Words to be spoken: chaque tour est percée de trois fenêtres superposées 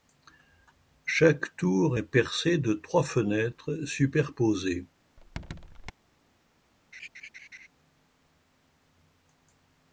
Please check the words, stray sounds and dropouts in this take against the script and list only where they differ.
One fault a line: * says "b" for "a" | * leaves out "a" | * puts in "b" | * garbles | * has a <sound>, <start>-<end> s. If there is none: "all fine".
* has a squeak, 5.2-5.9 s
* has a laugh, 6.9-7.7 s